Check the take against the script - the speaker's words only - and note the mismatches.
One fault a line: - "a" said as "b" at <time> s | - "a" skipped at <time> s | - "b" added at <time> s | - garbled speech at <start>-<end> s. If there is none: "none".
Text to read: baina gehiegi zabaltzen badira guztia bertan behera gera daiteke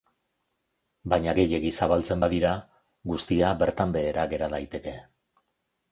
none